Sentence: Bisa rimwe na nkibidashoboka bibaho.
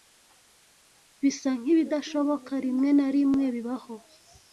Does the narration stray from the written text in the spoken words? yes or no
yes